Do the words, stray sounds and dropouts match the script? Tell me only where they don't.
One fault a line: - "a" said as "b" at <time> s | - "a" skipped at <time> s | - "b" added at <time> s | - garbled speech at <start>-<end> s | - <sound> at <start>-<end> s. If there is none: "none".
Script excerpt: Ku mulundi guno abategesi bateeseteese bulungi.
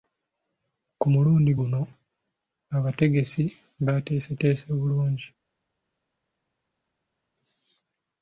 none